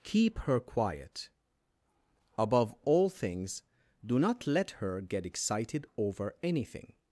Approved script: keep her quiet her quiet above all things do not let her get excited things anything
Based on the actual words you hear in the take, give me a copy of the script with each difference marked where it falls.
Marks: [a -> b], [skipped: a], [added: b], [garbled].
keep her quiet [skipped: her quiet] above all things do not let her get excited [things -> over] anything